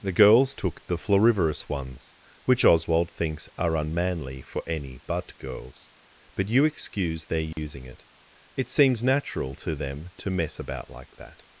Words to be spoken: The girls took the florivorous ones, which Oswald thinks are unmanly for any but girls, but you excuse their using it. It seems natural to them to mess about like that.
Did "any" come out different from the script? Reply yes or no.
no